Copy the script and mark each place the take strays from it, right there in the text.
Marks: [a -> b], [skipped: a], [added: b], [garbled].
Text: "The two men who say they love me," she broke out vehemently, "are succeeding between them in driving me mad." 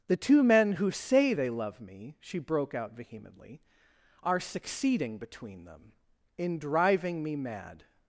"The two men who say they love me," she broke out vehemently, "are succeeding between them in driving me mad."